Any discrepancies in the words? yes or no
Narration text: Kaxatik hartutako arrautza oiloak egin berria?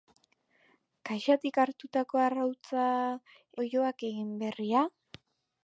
no